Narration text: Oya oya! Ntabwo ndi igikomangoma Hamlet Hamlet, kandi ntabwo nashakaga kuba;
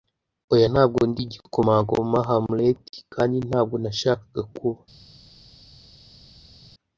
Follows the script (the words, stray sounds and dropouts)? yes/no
no